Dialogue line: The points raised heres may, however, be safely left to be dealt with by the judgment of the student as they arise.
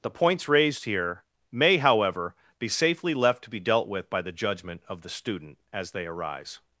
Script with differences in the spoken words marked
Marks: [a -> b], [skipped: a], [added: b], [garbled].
The points raised [heres -> here] may, however, be safely left to be dealt with by the judgment of the student as they arise.